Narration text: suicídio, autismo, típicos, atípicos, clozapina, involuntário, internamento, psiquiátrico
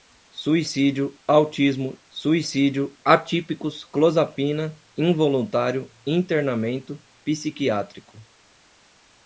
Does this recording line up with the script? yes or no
no